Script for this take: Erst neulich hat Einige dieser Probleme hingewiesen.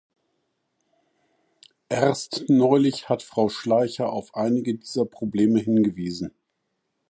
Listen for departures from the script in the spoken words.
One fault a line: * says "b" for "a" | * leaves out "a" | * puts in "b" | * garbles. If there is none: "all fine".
* puts in "Frau Schleicher auf"